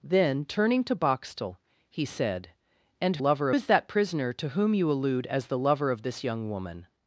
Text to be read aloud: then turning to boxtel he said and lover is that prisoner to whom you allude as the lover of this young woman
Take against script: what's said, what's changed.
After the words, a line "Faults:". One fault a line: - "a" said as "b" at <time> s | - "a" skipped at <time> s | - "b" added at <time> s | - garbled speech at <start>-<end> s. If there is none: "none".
then turning to boxtel he said and lover is that prisoner to whom you allude as the lover of this young woman
Faults:
none